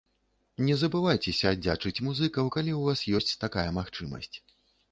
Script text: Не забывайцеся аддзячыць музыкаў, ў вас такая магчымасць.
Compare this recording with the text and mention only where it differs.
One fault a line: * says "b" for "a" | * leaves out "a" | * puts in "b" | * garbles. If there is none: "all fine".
* puts in "калі"
* puts in "ёсць"